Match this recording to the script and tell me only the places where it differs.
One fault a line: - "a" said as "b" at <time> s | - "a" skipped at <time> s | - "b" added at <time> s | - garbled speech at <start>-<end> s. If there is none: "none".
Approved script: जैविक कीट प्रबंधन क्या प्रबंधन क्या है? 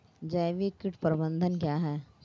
- "प्रबंधन क्या" skipped at 1.8 s